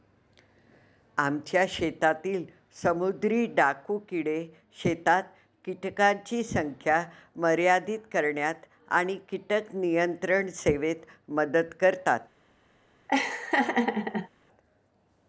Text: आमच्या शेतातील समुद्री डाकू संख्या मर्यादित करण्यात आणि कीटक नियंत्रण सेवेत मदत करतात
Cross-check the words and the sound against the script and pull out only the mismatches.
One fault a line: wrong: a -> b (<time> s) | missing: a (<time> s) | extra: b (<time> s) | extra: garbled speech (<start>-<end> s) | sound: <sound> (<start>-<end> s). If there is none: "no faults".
extra: किडे शेतात कीटकांची (4.1 s)
sound: laugh (13.1-14.3 s)